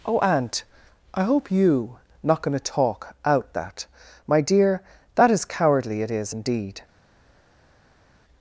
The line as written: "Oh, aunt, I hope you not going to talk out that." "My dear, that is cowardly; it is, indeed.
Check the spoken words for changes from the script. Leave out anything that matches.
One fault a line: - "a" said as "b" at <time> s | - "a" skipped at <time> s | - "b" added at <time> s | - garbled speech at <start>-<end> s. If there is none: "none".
none